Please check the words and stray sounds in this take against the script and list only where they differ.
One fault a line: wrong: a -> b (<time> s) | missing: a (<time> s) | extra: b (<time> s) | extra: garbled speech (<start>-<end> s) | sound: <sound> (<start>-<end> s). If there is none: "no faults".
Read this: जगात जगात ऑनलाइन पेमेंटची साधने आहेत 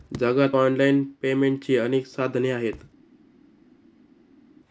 missing: जगात (0.6 s)
extra: अनेक (1.8 s)